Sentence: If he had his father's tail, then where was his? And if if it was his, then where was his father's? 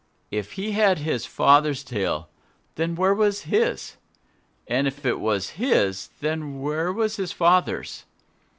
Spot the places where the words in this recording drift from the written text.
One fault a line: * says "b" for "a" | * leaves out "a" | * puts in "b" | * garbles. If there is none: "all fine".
all fine